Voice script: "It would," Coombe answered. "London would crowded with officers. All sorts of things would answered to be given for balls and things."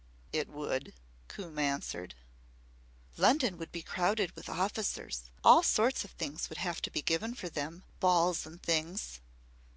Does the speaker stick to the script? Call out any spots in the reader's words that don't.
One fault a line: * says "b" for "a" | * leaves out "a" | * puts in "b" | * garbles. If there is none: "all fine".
* puts in "be"
* says "have" for "answered"
* puts in "them"